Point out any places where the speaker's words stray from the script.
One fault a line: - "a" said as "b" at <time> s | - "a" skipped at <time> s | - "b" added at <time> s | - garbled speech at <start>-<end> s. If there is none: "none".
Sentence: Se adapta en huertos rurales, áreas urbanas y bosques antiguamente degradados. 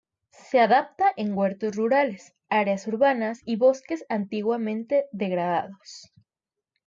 none